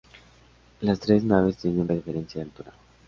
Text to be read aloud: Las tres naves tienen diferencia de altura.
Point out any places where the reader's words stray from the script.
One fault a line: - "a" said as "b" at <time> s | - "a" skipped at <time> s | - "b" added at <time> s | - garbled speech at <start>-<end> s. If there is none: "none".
none